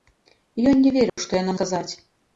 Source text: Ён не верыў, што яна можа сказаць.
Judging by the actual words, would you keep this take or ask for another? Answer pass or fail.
fail